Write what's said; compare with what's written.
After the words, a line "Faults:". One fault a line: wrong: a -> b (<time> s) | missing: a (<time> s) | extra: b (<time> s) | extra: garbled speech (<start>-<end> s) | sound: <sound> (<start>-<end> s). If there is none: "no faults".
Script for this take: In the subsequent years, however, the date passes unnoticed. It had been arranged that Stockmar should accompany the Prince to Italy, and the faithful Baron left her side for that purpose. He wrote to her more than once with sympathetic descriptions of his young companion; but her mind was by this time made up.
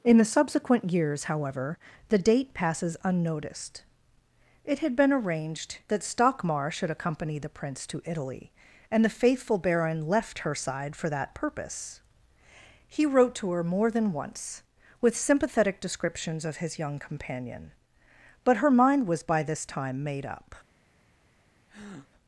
In the subsequent years, however, the date passes unnoticed. It had been arranged that Stockmar should accompany the Prince to Italy, and the faithful Baron left her side for that purpose. He wrote to her more than once with sympathetic descriptions of his young companion; but her mind was by this time made up.
Faults:
sound: breath (21.7-22.1 s)